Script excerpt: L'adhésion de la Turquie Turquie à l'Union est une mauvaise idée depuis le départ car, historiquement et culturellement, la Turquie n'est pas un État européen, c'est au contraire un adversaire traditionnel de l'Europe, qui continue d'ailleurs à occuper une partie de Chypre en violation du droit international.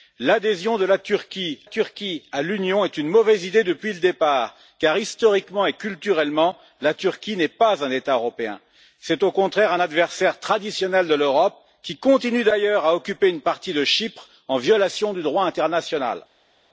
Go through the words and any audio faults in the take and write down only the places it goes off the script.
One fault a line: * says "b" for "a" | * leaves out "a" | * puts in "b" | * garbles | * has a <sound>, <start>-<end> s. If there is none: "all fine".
all fine